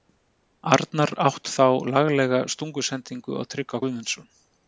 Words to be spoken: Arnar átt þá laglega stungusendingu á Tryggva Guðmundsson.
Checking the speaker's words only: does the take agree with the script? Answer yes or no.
yes